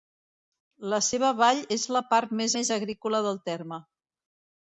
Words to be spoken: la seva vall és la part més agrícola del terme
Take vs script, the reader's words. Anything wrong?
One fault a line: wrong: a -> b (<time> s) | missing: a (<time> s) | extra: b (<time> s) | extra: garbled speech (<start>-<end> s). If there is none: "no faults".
extra: més (2.6 s)